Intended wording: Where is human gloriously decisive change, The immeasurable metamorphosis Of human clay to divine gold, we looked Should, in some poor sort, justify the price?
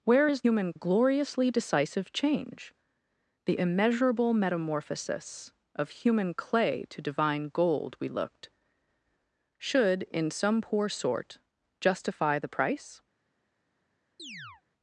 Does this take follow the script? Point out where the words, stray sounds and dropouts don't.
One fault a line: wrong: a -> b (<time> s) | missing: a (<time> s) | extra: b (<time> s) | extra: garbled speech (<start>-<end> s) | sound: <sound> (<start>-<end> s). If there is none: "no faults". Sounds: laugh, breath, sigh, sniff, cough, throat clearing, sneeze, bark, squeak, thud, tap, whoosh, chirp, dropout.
sound: chirp (14.2-14.6 s)